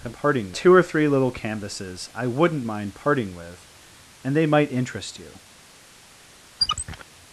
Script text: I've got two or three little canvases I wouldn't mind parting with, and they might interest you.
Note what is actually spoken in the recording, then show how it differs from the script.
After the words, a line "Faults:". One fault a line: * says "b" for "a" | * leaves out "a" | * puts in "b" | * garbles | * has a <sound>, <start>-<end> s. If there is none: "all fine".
I've parting two or three little canvases I wouldn't mind parting with, and they might interest you.
Faults:
* says "parting" for "got"
* has a squeak, 6.6-7.0 s